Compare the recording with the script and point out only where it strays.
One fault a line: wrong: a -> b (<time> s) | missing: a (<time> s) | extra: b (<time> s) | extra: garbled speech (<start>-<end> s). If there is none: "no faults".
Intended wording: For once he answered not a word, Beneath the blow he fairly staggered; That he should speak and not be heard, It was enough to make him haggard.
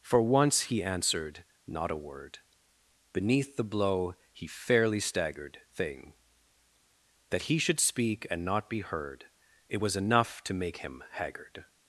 extra: thing (5.7 s)